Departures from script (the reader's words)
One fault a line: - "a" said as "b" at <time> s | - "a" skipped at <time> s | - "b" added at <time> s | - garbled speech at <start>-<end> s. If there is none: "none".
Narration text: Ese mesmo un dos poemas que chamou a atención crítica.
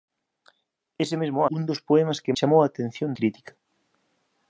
none